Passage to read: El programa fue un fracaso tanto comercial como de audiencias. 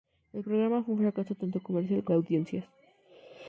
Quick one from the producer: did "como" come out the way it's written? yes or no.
no